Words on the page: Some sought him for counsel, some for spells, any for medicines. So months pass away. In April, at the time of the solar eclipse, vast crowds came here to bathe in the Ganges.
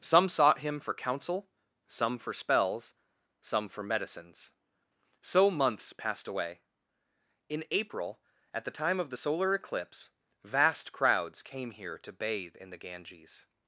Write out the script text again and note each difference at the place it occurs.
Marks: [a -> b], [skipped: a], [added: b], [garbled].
Some sought him for counsel, some for spells, [any -> some] for medicines. So months [pass -> passed] away. In April, at the time of the solar eclipse, vast crowds came here to bathe in the Ganges.